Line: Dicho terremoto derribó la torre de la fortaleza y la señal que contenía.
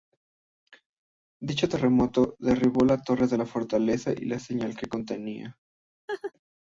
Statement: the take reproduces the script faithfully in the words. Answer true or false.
true